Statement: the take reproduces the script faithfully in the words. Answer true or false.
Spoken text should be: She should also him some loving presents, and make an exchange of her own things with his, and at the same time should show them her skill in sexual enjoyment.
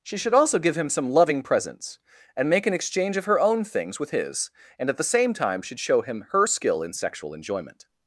false